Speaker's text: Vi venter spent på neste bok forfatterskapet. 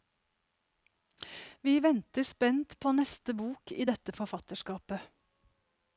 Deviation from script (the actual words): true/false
true